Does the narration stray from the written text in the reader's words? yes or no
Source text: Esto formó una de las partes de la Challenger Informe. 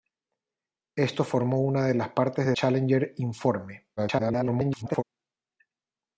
yes